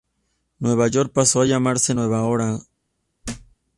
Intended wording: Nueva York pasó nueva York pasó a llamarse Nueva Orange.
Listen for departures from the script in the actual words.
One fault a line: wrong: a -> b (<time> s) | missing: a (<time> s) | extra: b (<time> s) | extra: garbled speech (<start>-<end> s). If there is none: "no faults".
missing: nueva York pasó (1.4 s)